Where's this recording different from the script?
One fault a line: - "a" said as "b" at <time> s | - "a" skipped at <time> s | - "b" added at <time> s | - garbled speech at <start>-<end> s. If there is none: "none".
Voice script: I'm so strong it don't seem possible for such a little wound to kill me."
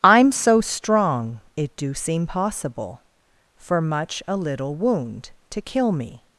- "don't" said as "do" at 1.8 s
- "such" said as "much" at 3.8 s